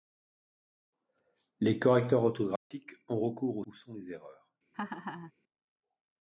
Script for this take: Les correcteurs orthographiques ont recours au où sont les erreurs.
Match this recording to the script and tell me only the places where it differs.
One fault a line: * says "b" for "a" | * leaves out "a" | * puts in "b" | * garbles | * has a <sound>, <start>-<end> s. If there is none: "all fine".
* has a dropout, 2.6-2.7 s
* has a laugh, 4.7-5.3 s